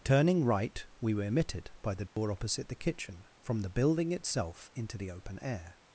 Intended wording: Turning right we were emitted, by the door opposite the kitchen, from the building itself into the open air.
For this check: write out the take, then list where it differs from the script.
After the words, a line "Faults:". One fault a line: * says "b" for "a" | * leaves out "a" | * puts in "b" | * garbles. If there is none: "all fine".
Turning right we were emitted, by the door opposite the kitchen, from the building itself into the open air.
Faults:
all fine